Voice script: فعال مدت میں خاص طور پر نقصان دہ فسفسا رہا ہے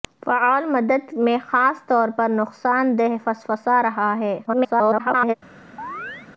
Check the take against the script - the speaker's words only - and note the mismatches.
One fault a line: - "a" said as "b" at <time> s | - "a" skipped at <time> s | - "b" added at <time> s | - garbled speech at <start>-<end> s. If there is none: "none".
- garbled speech at 4.5-5.3 s